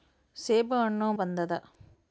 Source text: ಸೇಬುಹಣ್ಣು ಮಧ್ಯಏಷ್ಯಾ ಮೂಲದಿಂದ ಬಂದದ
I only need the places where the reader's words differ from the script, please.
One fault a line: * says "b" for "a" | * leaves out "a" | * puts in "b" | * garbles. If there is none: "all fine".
* leaves out "ಮಧ್ಯಏಷ್ಯಾ ಮೂಲದಿಂದ"